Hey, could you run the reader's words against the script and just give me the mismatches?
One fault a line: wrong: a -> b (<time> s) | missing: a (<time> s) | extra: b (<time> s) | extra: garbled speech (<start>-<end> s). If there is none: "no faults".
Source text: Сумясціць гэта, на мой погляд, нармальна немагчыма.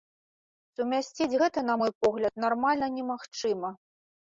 no faults